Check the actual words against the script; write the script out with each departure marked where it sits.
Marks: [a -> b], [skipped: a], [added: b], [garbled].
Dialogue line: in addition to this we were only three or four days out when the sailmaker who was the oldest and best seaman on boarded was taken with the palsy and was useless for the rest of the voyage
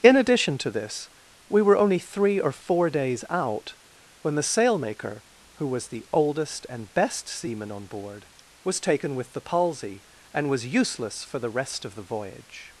in addition to this we were only three or four days out when the sailmaker who was the oldest and best seaman on [boarded -> board] was taken with the palsy and was useless for the rest of the voyage